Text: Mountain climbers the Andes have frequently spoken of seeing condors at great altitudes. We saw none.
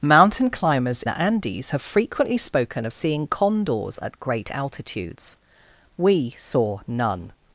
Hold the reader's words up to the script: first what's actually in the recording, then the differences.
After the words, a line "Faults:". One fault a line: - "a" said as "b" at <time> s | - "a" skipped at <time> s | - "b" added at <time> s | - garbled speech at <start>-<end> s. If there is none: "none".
Mountain climbers the Andes have frequently spoken of seeing condors at great altitudes. We saw none.
Faults:
none